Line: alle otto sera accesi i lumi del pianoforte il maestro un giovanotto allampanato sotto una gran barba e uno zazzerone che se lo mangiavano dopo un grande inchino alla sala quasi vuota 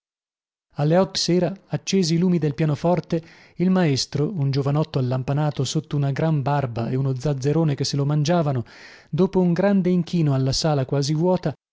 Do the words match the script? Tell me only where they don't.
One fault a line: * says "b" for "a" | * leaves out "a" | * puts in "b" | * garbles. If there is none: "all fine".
all fine